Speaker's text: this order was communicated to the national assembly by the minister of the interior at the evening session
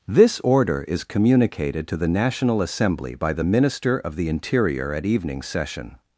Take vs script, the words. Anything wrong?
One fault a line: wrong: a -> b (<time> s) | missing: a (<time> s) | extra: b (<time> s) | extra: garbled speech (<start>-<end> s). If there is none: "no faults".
wrong: was -> is (0.9 s)
missing: the (5.0 s)